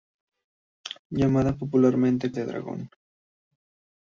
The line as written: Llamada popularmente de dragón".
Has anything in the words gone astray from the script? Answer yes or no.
no